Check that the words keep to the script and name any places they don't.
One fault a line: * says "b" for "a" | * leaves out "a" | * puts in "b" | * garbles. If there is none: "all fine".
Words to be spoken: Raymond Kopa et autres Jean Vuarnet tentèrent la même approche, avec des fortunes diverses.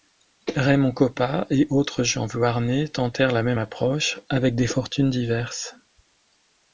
all fine